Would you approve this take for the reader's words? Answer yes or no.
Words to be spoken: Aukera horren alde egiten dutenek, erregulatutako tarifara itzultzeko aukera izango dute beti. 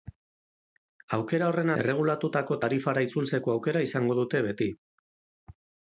no